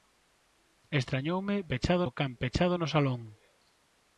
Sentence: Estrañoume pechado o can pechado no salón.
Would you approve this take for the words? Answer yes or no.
yes